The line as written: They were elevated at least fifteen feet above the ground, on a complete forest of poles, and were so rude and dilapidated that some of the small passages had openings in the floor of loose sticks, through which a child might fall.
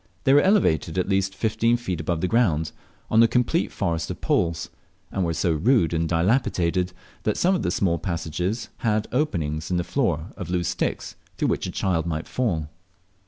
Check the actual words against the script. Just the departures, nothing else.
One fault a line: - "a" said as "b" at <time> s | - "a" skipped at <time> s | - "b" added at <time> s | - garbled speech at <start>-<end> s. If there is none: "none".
none